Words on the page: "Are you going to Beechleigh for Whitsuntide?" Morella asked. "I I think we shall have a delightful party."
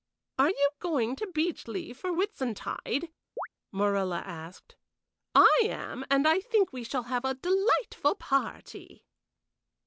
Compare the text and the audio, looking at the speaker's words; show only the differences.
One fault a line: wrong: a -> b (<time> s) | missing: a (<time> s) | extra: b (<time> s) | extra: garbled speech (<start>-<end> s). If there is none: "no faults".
extra: am and (5.6 s)